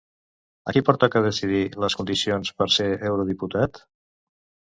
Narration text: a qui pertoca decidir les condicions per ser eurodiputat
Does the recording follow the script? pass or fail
pass